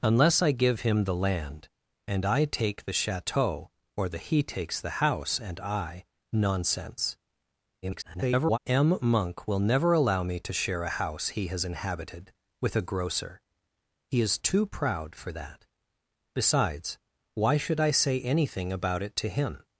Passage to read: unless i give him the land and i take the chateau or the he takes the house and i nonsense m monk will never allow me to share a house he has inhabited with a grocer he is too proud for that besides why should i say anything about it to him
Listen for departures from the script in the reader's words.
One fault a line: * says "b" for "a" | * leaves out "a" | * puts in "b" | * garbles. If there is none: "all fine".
* garbles